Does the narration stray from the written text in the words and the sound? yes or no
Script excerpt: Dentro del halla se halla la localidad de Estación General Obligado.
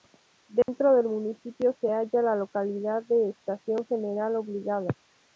yes